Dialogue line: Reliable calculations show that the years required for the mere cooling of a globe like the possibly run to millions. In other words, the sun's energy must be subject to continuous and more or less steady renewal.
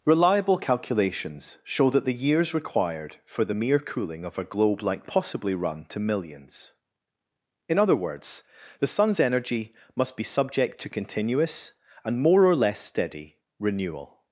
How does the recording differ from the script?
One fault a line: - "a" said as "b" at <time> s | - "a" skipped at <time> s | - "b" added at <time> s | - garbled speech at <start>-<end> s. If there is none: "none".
none